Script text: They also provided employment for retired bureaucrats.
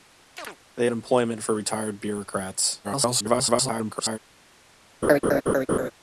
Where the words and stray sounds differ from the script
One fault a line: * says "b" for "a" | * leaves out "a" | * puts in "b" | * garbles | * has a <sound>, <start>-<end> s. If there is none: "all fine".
* has a chirp, 0.4-0.6 s
* leaves out "also provided"
* garbles
* has a laugh, 5.0-5.9 s